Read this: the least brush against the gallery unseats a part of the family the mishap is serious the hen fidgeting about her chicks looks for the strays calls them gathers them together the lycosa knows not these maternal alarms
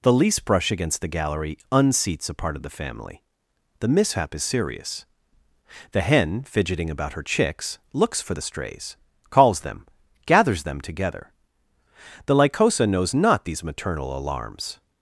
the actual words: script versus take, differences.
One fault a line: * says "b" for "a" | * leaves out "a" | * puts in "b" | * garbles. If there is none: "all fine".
all fine